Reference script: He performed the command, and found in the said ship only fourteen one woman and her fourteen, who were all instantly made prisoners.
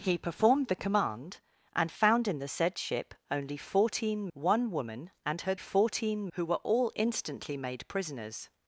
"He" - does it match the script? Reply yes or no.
yes